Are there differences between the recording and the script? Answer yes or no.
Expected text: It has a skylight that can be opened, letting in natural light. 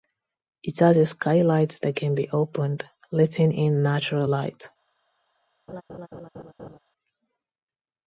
no